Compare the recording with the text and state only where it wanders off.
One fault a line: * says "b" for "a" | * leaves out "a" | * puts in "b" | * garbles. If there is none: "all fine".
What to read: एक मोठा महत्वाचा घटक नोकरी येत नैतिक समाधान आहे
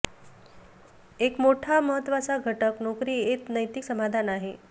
all fine